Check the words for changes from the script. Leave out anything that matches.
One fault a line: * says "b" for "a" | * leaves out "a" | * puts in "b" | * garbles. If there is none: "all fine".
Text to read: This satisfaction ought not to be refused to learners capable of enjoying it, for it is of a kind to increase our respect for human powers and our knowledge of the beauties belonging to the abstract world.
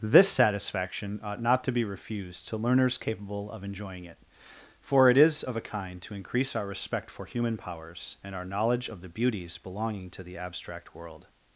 all fine